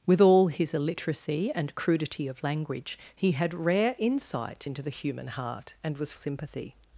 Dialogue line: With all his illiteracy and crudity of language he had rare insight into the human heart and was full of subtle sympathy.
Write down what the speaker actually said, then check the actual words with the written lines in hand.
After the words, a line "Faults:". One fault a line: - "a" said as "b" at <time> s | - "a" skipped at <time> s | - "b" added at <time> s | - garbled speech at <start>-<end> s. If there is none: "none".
With all his illiteracy and crudity of language he had rare insight into the human heart and was sympathy.
Faults:
- "full of subtle" skipped at 6.1 s